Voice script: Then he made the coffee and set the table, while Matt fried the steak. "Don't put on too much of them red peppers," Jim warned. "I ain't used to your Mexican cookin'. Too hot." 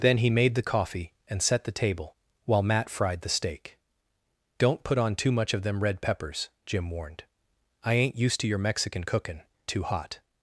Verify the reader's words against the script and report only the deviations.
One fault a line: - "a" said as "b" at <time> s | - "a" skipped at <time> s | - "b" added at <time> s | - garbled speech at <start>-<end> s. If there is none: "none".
none